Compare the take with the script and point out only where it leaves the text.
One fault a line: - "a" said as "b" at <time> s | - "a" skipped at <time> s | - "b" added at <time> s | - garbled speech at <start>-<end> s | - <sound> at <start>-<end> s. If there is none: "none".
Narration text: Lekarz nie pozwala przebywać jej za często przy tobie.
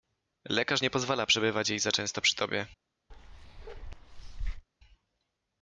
- bark at 3.1-4.7 s